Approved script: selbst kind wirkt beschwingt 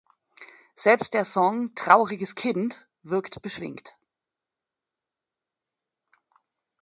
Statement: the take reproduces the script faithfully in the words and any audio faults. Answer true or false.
false